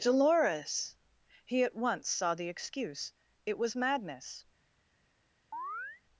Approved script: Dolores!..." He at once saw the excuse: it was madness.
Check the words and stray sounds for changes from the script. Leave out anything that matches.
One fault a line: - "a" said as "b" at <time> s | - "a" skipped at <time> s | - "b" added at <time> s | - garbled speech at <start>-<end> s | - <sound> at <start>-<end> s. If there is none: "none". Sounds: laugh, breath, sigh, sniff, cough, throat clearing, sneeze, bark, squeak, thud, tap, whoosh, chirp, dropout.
- chirp at 5.5-6.0 s